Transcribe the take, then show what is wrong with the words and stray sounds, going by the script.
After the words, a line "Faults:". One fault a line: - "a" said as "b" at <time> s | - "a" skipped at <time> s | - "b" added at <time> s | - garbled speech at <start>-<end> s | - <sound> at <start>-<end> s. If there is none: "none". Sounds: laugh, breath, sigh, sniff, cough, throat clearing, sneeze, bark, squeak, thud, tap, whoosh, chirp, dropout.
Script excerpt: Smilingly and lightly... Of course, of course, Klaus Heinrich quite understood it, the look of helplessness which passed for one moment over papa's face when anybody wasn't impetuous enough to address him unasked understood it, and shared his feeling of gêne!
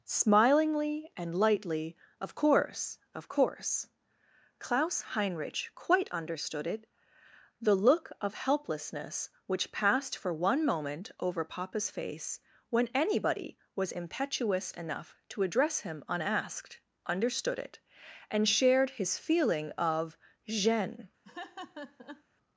Smilingly and lightly... Of course, of course, Klaus Heinrich quite understood it, the look of helplessness which passed for one moment over papa's face when anybody was impetuous enough to address him unasked understood it, and shared his feeling of gêne!
Faults:
- "wasn't" said as "was" at 13.8 s
- laugh at 21.2-22.2 s